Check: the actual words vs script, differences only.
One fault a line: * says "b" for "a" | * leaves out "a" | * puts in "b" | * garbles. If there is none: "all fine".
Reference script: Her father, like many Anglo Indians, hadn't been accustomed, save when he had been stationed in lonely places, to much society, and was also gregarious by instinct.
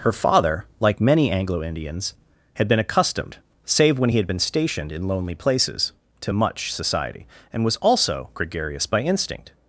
* says "had" for "hadn't"